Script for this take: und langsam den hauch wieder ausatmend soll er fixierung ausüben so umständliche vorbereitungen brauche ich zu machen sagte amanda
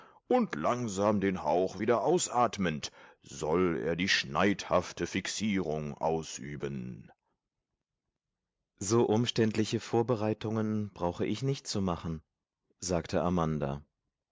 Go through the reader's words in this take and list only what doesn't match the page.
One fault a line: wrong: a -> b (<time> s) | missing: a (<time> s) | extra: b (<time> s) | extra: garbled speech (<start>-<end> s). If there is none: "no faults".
extra: die schneidhafte (4.0 s)
extra: nicht (11.4 s)